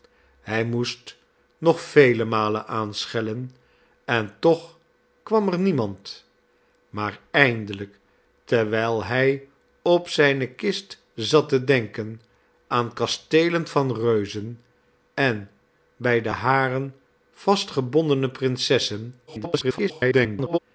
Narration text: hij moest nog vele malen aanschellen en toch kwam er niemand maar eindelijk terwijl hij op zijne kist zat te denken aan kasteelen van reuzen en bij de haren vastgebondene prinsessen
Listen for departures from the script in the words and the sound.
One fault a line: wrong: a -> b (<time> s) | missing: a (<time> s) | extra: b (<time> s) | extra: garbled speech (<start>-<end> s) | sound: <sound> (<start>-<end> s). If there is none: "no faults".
extra: garbled speech (19.3-20.6 s)